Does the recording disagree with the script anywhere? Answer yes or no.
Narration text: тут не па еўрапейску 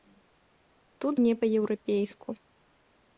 no